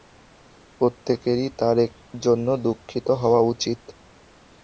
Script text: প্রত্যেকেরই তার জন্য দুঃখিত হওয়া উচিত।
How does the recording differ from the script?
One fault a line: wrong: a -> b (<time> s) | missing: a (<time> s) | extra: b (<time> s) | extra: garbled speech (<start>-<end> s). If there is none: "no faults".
no faults